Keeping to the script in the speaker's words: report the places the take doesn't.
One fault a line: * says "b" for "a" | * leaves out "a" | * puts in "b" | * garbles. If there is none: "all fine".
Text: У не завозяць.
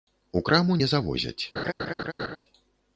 * puts in "краму"